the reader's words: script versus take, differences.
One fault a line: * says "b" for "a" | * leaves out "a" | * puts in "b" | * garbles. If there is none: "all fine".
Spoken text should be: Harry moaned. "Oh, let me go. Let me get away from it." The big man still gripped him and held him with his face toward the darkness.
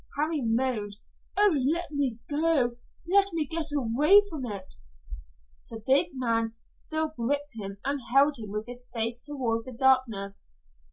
all fine